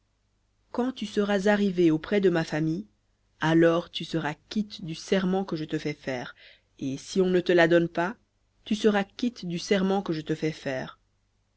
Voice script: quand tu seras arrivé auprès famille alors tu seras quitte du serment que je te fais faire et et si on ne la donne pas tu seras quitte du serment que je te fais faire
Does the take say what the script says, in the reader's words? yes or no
no